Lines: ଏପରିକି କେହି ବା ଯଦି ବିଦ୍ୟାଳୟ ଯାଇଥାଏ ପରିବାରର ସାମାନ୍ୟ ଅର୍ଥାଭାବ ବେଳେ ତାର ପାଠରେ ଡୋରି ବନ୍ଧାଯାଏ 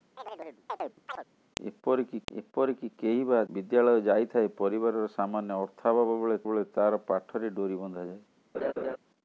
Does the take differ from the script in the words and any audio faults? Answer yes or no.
yes